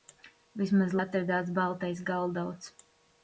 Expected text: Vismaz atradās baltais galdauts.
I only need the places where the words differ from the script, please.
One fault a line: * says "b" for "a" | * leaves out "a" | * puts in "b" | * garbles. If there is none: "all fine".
all fine